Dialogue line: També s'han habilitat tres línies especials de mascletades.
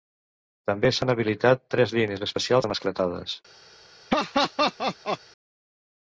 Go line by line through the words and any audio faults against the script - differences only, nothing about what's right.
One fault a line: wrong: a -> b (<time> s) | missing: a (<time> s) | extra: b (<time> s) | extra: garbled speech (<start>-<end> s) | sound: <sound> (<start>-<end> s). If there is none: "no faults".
sound: laugh (4.1-5.2 s)